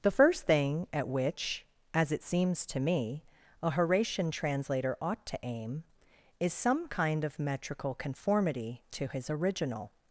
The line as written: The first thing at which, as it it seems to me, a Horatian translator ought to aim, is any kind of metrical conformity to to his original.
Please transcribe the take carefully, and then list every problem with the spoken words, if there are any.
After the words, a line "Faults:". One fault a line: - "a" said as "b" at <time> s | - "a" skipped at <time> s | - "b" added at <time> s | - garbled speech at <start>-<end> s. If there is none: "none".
The first thing at which, as it seems to me, a Horatian translator ought to aim, is some kind of metrical conformity to his original.
Faults:
- "it" skipped at 2.2 s
- "any" said as "some" at 6.5 s
- "to" skipped at 9.1 s